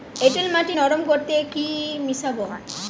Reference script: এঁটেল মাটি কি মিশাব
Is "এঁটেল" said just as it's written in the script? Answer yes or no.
yes